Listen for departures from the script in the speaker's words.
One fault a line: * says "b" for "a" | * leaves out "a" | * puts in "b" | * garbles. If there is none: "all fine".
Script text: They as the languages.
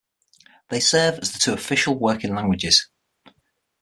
* puts in "serve"
* puts in "two official working"